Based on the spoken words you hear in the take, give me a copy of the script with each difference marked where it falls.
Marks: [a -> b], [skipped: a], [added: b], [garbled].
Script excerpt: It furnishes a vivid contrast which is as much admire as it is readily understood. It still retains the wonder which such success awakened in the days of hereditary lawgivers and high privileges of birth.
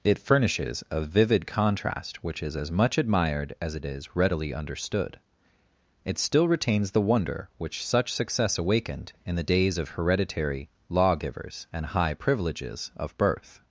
It furnishes a vivid contrast which is as much [admire -> admired] as it is readily understood. It still retains the wonder which such success awakened in the days of hereditary lawgivers and high privileges of birth.